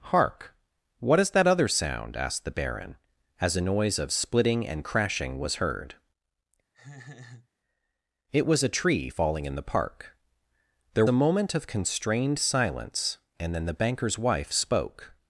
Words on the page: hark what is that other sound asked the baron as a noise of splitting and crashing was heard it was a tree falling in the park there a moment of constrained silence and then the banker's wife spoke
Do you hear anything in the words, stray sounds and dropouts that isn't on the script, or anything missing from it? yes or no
yes